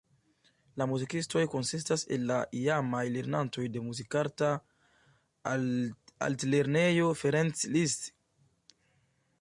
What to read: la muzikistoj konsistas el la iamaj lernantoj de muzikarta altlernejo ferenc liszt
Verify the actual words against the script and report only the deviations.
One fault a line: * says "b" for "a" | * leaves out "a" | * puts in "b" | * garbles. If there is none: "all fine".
all fine